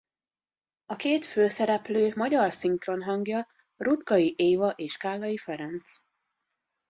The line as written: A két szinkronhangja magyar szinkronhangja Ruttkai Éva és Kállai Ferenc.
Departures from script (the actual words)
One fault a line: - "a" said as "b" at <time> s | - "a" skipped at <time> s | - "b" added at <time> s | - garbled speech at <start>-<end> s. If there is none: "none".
- "szinkronhangja" said as "főszereplő" at 1.3 s